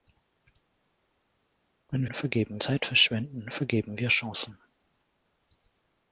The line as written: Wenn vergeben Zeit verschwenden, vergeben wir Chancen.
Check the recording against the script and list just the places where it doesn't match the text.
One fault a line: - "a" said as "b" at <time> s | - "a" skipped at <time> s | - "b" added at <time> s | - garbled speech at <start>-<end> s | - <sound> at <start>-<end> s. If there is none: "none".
none